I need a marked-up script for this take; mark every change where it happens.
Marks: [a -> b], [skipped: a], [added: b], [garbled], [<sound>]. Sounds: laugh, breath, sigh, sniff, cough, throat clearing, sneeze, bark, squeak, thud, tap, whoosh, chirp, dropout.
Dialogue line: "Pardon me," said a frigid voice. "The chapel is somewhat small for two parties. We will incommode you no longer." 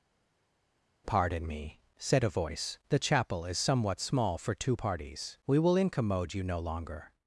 "Pardon me," said a [skipped: frigid] voice. "The chapel is somewhat small for two parties. We will incommode you no longer."